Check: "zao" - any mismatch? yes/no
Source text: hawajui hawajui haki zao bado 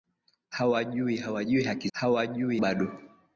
yes